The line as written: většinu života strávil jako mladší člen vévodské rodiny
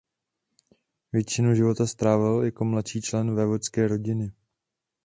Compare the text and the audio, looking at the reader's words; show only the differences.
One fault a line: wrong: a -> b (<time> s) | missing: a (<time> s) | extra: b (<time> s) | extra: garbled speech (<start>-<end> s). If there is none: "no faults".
no faults